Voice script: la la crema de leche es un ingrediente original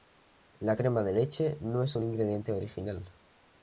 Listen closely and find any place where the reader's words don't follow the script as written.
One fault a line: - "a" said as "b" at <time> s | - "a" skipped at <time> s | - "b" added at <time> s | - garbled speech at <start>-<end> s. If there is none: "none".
- "la" skipped at 0.8 s
- "no" added at 1.6 s